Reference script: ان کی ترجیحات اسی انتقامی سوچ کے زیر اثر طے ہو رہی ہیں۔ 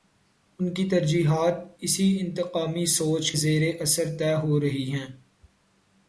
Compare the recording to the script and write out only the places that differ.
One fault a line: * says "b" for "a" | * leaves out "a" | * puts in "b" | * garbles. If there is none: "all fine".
* leaves out "کے"